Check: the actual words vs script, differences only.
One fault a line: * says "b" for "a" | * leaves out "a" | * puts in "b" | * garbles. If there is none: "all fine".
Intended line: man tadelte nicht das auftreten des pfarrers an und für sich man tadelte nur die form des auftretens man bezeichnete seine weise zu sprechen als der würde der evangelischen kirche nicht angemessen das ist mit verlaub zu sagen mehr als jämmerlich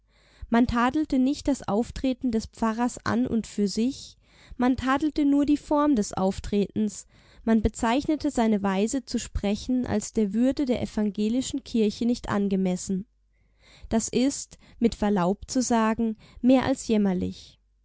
all fine